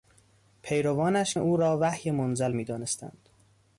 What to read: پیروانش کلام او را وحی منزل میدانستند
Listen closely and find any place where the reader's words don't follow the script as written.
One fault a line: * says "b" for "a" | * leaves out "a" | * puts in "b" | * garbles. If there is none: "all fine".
* leaves out "کلام"